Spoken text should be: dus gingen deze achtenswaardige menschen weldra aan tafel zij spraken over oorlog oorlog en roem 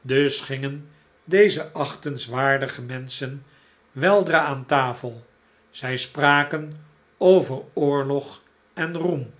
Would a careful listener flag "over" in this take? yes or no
no